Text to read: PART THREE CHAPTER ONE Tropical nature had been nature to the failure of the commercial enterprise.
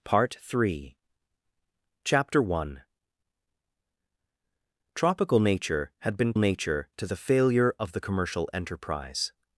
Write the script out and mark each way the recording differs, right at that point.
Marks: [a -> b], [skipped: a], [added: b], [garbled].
PART THREE CHAPTER ONE Tropical nature had been nature to the failure of the commercial enterprise.